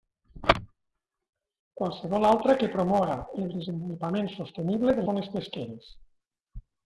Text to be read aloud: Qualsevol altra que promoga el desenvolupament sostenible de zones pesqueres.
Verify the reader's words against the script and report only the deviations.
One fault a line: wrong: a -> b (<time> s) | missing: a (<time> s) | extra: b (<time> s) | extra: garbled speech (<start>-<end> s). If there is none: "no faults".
no faults